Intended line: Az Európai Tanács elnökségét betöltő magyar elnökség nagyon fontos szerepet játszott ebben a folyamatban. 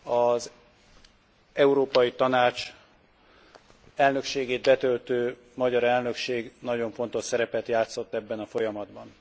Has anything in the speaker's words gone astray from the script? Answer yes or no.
no